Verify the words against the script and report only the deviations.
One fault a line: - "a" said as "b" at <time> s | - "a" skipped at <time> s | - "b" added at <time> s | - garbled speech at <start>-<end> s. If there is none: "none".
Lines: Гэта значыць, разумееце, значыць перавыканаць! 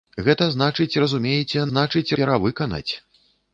none